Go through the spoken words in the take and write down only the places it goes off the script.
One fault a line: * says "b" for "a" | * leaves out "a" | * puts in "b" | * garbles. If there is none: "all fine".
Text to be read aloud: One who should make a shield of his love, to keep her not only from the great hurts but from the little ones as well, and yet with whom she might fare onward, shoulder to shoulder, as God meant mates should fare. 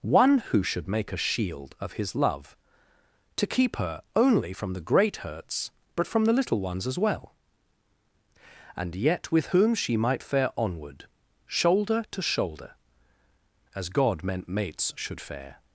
* leaves out "not"